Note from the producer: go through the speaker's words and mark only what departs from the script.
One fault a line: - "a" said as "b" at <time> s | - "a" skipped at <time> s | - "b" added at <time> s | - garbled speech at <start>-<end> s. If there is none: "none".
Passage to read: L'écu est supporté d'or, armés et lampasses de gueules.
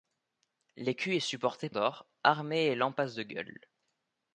none